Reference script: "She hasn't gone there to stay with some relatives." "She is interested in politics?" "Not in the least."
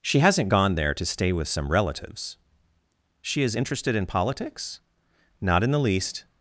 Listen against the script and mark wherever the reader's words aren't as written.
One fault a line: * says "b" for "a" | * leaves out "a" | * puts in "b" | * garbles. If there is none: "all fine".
all fine